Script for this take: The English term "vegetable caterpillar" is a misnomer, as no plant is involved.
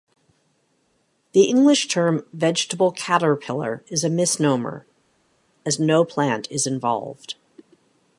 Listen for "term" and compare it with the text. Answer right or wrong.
right